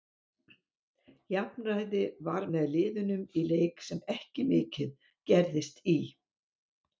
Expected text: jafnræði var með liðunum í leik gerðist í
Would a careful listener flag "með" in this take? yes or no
no